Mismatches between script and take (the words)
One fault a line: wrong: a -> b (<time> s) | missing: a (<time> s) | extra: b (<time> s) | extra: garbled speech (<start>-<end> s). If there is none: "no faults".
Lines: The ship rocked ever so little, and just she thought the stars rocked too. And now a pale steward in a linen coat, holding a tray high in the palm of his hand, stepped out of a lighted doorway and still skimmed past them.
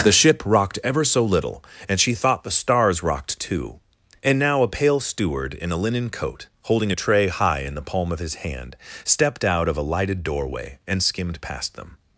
missing: just (2.0 s)
missing: still (11.0 s)